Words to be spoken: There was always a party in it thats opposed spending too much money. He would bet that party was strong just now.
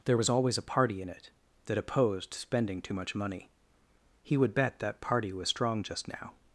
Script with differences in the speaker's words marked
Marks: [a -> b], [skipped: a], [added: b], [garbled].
There was always a party in it [thats -> that] opposed spending too much money. He would bet that party was strong just now.